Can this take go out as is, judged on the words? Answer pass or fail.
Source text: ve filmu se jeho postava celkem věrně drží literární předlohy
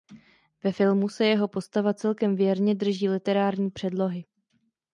pass